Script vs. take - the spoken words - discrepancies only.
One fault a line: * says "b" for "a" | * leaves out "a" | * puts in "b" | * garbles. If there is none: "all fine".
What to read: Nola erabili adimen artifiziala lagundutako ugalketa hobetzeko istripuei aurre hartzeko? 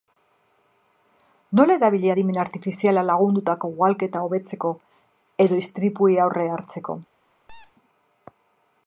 * puts in "edo"